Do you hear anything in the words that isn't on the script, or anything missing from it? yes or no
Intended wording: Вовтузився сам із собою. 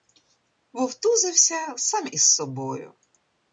no